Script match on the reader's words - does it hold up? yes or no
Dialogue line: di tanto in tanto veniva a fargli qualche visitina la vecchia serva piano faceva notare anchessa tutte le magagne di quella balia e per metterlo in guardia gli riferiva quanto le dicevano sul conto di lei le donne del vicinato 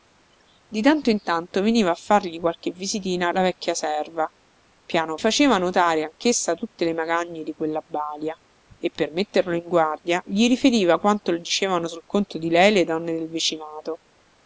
yes